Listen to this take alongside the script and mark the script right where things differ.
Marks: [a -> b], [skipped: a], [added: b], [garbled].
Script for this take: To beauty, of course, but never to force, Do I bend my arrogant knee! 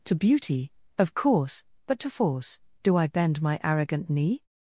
To beauty, of course, but [skipped: never] to force, Do I bend my arrogant knee!